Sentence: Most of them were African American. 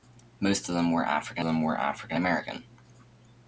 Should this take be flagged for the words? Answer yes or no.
yes